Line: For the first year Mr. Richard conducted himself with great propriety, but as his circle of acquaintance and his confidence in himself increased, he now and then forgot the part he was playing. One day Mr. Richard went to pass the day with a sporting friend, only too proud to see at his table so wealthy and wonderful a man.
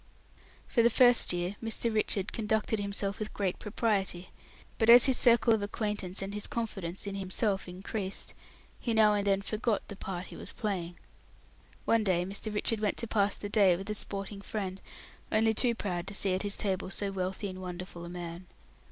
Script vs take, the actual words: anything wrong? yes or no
no